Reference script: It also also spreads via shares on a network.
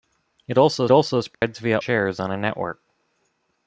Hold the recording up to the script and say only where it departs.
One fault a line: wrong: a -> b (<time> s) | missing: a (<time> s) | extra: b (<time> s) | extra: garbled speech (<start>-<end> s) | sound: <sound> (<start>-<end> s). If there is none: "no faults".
sound: dropout (1.3-1.4 s)